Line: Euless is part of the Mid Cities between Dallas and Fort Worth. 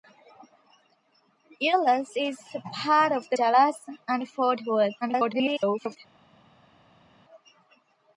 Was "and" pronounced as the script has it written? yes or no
yes